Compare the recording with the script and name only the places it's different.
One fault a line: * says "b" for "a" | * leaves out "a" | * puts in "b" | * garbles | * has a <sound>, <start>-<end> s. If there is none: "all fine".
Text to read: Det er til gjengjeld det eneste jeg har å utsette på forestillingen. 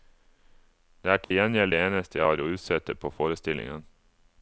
* has a dropout, 1.2-1.3 s